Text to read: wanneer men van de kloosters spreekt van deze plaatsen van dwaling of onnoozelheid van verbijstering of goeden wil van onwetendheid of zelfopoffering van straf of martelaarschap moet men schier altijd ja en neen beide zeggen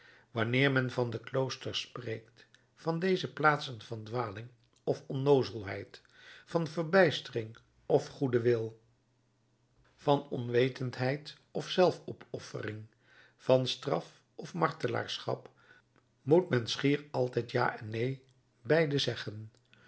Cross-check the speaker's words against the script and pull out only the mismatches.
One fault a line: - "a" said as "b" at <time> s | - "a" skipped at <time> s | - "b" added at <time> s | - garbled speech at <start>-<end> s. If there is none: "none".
none